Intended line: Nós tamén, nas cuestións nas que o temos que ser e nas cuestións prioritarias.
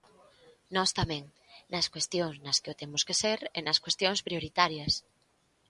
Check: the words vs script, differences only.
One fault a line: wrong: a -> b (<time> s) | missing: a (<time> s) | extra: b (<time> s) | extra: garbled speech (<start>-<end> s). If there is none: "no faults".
no faults